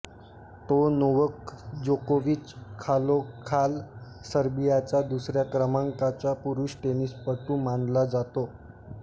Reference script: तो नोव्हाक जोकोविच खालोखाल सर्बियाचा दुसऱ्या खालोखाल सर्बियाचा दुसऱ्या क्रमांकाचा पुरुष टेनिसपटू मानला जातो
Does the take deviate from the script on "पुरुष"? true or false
false